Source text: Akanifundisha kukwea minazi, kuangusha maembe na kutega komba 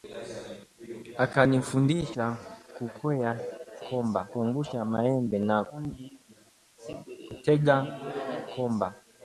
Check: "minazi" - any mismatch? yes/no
yes